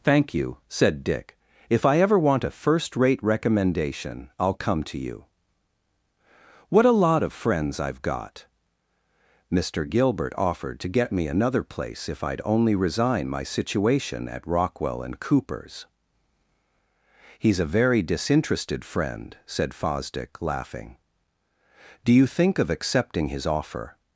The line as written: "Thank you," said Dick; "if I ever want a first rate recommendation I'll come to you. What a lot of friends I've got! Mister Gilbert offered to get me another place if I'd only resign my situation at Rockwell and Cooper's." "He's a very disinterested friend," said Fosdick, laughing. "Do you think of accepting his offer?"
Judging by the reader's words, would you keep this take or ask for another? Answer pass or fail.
pass